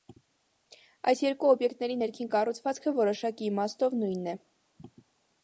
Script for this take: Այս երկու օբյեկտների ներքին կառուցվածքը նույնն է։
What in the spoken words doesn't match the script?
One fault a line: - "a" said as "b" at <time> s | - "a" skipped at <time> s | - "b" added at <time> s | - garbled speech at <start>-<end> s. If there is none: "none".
- "որոշակի իմաստով" added at 3.0 s